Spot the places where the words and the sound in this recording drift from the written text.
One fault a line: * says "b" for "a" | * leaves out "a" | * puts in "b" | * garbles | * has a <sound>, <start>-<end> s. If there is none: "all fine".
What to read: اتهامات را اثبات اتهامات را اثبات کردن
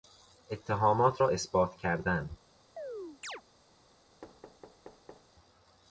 * leaves out "اتهامات را اثبات"
* has a chirp, 2.8-3.4 s
* has a thud, 4.2-5.3 s